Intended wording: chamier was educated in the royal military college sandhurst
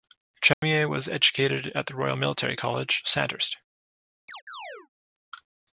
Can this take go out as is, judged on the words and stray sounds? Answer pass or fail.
fail